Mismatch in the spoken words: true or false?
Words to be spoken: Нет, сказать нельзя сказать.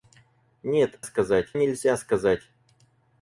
false